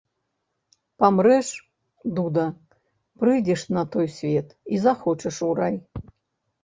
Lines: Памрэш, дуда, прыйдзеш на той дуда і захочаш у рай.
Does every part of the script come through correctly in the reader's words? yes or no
no